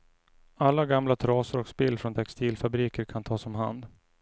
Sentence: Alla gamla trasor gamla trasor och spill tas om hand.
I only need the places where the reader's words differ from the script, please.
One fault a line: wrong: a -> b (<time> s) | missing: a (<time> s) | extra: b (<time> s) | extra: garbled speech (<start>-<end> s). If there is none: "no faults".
wrong: gamla trasor och spill -> och spill från textilfabriker kan (1.6 s)